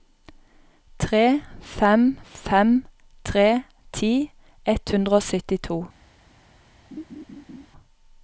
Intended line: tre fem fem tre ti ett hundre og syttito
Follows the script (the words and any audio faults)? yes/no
no